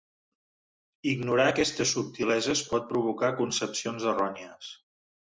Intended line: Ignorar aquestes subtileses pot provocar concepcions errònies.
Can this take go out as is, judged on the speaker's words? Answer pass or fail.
pass